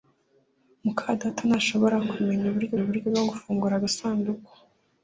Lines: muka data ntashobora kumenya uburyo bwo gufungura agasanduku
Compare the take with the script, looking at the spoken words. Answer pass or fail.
fail